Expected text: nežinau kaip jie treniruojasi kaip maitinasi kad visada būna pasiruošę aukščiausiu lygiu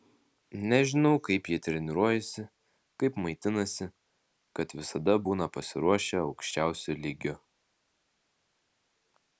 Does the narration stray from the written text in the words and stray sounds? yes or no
no